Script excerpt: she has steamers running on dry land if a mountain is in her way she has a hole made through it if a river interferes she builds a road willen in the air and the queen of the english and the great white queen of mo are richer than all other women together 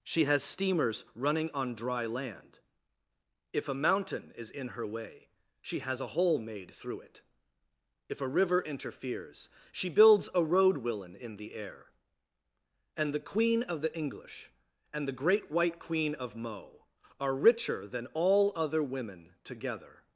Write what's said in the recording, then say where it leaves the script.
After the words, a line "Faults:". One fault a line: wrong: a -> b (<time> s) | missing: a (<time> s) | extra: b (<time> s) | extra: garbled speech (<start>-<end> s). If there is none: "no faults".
she has steamers running on dry land if a mountain is in her way she has a hole made through it if a river interferes she builds a road willen in the air and the queen of the english and the great white queen of mo are richer than all other women together
Faults:
no faults